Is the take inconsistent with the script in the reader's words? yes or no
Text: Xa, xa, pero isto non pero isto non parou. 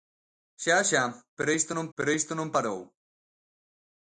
no